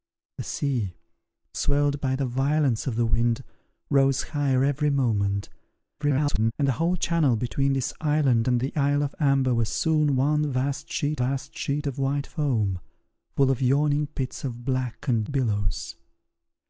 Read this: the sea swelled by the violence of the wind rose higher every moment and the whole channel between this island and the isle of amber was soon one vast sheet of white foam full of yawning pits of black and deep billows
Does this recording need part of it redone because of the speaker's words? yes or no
yes